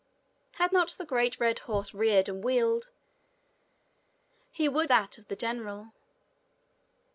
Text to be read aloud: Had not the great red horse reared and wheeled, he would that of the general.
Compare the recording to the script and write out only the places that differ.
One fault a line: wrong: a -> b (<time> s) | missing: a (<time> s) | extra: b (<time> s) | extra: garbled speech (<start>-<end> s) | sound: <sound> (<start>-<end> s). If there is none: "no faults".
no faults